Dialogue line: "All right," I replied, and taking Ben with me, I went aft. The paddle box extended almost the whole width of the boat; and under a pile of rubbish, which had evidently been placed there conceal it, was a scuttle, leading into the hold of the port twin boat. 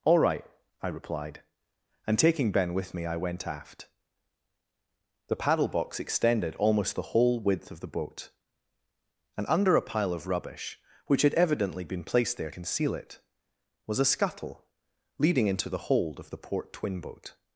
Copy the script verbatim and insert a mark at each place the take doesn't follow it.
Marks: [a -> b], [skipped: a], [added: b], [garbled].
"All right," I replied, and taking Ben with me, I went aft. The paddle box extended almost the whole width of the boat; and under a pile of rubbish, which had evidently been placed there conceal it, was a scuttle, leading into the hold of the port twin boat.